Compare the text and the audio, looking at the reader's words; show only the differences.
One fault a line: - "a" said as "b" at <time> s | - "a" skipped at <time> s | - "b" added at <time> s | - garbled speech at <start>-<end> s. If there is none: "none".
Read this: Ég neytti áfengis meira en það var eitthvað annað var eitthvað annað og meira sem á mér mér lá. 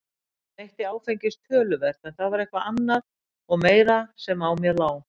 - "meira" said as "töluvert" at 1.5 s
- "var eitthvað annað" skipped at 3.0 s
- "mér" skipped at 4.8 s